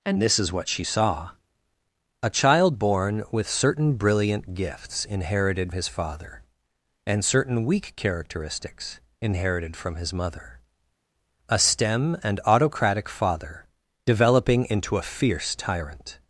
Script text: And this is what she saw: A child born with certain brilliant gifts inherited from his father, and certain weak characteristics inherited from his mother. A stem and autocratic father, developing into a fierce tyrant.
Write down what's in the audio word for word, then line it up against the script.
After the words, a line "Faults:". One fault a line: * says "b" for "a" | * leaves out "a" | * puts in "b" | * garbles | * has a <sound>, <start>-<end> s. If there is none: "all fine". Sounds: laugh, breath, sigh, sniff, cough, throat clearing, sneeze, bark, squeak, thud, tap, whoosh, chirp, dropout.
And this is what she saw: A child born with certain brilliant gifts inherited his father, and certain weak characteristics inherited from his mother. A stem and autocratic father, developing into a fierce tyrant.
Faults:
* leaves out "from"